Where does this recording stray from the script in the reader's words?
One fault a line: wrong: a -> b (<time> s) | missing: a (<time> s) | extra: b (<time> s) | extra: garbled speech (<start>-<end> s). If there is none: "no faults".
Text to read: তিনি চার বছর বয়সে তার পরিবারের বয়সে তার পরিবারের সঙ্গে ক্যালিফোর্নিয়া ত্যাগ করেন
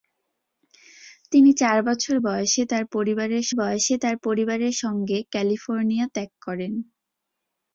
no faults